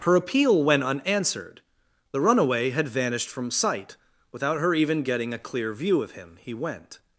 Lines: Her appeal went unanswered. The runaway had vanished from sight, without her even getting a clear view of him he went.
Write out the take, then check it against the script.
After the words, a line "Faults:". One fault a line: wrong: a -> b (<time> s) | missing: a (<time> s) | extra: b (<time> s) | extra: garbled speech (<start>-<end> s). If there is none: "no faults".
Her appeal went unanswered. The runaway had vanished from sight, without her even getting a clear view of him he went.
Faults:
no faults